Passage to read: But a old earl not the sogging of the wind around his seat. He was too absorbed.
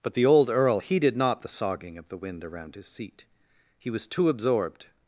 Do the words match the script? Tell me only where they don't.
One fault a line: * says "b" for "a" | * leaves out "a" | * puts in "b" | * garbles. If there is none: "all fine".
* says "the" for "a"
* puts in "heeded"